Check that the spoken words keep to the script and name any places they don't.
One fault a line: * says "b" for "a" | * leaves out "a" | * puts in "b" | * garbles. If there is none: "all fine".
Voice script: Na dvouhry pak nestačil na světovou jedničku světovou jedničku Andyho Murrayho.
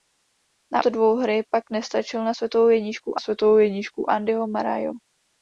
all fine